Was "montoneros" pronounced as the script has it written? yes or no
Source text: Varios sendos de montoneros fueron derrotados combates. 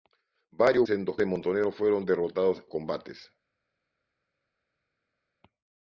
yes